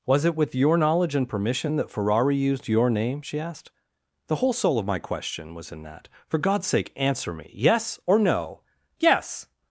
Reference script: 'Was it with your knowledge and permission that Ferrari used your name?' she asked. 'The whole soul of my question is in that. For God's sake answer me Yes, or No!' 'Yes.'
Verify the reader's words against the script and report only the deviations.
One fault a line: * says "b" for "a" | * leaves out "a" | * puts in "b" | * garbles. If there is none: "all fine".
* says "was" for "is"